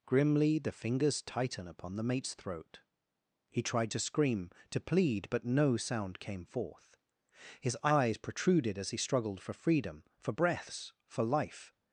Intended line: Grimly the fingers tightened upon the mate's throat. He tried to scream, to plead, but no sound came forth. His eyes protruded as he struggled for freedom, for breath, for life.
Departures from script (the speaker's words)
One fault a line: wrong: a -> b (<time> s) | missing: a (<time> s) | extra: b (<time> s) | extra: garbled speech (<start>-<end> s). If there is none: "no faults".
wrong: tightened -> tighten (1.2 s)
wrong: breath -> breaths (10.3 s)